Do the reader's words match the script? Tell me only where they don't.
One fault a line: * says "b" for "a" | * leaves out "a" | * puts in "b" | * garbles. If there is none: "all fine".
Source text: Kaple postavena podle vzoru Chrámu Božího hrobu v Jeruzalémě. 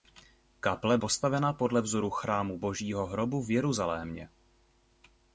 all fine